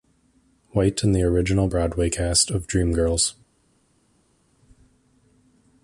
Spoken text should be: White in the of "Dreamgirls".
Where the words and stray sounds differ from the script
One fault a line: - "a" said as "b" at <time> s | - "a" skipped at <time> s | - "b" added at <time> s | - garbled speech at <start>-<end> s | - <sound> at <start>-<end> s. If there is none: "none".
- "original Broadway cast" added at 1.2 s